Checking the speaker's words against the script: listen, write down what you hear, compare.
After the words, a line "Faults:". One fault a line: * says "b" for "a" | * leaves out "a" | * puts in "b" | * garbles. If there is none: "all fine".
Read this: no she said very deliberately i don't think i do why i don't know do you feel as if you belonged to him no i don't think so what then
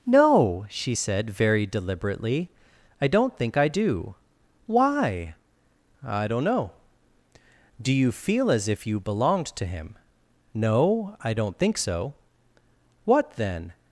no she said very deliberately i don't think i do why i don't know do you feel as if you belonged to him no i don't think so what then
Faults:
all fine